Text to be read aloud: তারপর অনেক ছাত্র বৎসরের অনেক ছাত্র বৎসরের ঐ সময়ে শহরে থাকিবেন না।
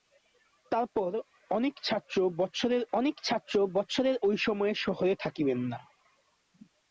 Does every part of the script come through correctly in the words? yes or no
yes